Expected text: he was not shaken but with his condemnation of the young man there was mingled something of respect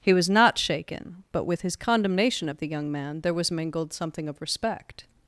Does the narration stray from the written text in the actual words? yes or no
no